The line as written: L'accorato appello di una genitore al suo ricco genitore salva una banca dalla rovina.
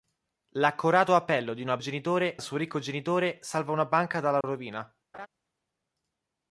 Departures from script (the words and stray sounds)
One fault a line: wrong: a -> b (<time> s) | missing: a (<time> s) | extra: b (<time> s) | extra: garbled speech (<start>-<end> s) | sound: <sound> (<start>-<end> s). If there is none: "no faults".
sound: dropout (4.4-4.4 s)
sound: laugh (5.1-5.3 s)